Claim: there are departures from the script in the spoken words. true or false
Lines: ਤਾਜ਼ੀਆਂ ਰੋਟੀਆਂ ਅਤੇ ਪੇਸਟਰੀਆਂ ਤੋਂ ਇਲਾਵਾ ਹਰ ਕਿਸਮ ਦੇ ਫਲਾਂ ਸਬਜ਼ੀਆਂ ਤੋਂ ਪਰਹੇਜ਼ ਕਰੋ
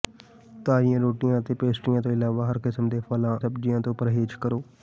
false